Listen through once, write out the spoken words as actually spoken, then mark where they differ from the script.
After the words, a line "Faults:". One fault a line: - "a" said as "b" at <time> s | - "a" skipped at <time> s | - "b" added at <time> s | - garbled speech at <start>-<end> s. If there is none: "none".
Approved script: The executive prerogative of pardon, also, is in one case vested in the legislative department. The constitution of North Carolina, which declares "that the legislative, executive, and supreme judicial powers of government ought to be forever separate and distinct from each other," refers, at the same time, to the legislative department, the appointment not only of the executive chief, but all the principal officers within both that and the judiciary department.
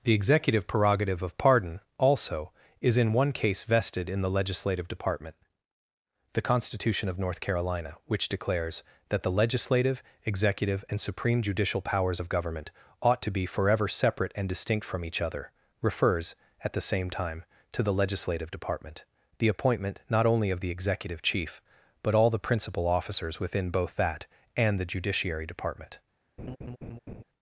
The executive prerogative of pardon, also, is in one case vested in the legislative department. The constitution of North Carolina, which declares "that the legislative, executive, and supreme judicial powers of government ought to be forever separate and distinct from each other," refers, at the same time, to the legislative department, the appointment not only of the executive chief, but all the principal officers within both that and the judiciary department.
Faults:
none